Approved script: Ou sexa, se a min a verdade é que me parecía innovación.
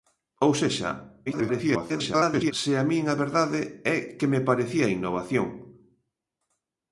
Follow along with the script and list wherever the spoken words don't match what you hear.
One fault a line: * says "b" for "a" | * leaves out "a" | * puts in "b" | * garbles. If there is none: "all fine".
* garbles